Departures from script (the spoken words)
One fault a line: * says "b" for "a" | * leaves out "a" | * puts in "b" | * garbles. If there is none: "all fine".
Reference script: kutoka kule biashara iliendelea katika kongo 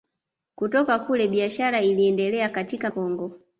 all fine